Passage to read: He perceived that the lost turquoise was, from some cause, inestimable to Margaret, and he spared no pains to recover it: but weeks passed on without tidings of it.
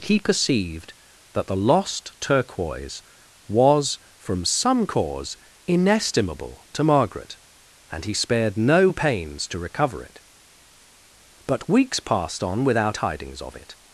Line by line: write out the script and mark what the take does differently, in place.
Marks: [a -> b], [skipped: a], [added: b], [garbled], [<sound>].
He perceived that the lost turquoise was, from some cause, inestimable to Margaret, and he spared no pains to recover it: but weeks passed on without tidings of it.